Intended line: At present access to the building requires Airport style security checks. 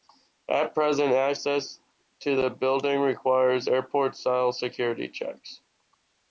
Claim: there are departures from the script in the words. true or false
false